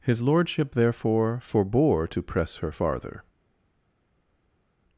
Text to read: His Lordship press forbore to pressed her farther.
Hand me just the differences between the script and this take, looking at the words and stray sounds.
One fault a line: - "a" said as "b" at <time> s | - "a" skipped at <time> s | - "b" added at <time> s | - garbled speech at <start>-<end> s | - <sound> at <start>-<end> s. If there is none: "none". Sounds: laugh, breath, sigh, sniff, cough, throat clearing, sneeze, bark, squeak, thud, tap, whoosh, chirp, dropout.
- "press" said as "therefore" at 0.7 s
- "pressed" said as "press" at 2.2 s